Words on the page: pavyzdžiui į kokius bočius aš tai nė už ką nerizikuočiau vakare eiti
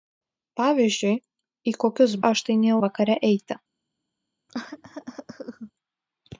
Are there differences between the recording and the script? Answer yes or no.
yes